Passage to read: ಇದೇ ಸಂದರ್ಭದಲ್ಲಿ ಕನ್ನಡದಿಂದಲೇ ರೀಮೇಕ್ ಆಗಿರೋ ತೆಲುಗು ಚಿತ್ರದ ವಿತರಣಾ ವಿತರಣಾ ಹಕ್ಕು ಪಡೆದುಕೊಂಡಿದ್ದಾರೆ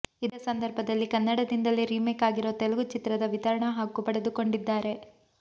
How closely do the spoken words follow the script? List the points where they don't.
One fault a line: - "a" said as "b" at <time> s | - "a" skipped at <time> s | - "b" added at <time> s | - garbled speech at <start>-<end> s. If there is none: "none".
- "ವಿತರಣಾ" skipped at 3.7 s